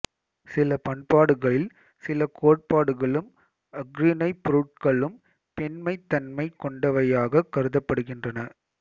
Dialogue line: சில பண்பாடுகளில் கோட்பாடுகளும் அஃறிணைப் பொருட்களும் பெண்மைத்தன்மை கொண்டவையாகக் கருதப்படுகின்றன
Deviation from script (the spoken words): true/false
true